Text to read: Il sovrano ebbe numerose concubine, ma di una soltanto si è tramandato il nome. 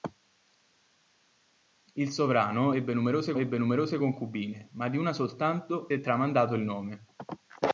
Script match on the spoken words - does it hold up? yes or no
no